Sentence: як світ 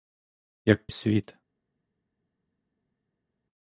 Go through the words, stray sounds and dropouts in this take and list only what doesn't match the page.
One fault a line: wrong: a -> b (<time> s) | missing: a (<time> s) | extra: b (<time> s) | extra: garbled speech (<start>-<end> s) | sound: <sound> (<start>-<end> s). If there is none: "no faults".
no faults